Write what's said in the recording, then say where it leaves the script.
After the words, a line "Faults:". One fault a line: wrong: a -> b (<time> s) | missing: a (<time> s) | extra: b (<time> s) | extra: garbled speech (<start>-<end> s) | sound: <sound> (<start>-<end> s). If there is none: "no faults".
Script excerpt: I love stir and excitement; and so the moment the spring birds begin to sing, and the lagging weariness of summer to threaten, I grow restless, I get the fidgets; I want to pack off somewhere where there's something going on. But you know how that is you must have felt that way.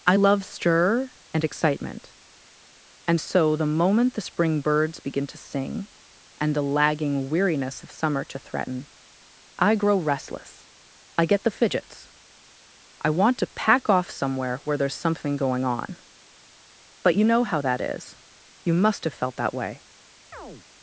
I love stir and excitement; and so the moment the spring birds begin to sing, and the lagging weariness of summer to threaten, I grow restless, I get the fidgets; I want to pack off somewhere where there's something going on. But you know how that is you must have felt that way.
Faults:
sound: chirp (20.3-20.7 s)